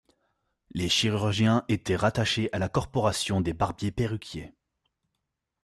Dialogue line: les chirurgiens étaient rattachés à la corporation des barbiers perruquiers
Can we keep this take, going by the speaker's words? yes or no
yes